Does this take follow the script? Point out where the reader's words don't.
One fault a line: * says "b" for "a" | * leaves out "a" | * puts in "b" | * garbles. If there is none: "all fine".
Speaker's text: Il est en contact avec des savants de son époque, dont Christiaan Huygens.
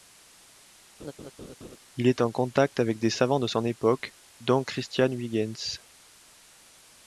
all fine